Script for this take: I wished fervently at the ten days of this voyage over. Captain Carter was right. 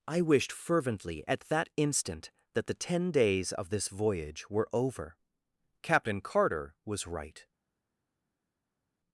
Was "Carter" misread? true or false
false